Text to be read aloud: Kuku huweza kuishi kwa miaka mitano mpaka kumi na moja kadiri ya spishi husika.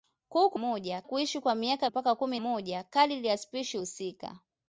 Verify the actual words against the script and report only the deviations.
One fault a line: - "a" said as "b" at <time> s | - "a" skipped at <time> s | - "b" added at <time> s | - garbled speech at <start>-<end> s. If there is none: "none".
- "huweza" said as "moja" at 0.6 s
- "mitano" skipped at 1.9 s
- "na" skipped at 2.4 s